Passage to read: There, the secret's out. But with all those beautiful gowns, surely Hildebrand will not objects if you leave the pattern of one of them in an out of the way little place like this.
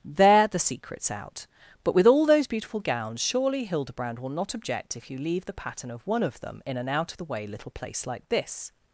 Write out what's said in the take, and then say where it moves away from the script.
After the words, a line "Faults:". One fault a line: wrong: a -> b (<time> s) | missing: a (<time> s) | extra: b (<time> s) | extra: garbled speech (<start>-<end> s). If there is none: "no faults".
There, the secret's out. But with all those beautiful gowns, surely Hildebrand will not object if you leave the pattern of one of them in an out of the way little place like this.
Faults:
wrong: objects -> object (4.5 s)